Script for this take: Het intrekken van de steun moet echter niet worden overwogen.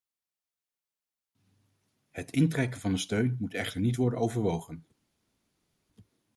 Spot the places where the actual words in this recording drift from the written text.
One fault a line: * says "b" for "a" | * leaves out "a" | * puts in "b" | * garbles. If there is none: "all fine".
all fine